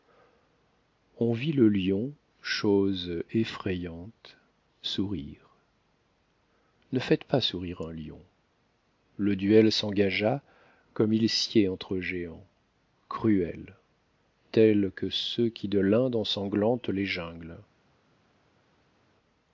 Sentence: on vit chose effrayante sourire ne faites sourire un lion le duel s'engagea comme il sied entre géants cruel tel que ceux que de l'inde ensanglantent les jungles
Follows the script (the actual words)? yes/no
no